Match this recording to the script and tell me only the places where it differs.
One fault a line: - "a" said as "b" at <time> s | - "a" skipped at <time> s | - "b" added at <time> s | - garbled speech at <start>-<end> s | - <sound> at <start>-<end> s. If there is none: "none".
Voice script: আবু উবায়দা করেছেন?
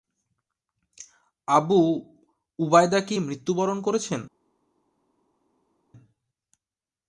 - "কি মৃত্যুবরণ" added at 3.0 s